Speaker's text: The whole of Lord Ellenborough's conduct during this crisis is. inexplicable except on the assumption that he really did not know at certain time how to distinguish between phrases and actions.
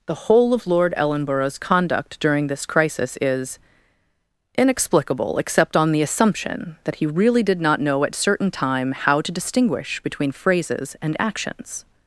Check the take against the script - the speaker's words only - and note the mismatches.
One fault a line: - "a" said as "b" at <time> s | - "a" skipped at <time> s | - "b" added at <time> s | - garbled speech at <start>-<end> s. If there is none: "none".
none